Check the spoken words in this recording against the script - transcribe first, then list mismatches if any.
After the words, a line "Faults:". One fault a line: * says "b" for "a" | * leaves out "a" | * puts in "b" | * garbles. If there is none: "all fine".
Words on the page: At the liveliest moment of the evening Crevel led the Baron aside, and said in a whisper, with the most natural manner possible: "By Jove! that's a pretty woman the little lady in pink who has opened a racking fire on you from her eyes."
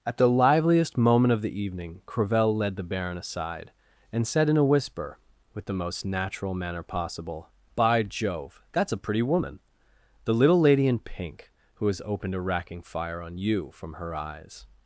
At the liveliest moment of the evening Crevel led the Baron aside, and said in a whisper, with the most natural manner possible: "By Jove! that's a pretty woman the little lady in pink who has opened a racking fire on you from her eyes."
Faults:
all fine